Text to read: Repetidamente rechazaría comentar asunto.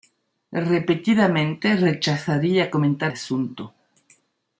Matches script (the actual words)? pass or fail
pass